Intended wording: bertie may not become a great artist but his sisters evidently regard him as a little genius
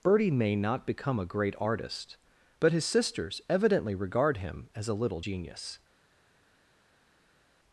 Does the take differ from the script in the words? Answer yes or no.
no